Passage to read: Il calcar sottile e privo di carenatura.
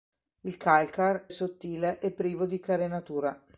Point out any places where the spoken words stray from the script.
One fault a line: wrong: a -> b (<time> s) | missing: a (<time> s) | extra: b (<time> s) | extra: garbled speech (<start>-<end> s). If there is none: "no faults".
no faults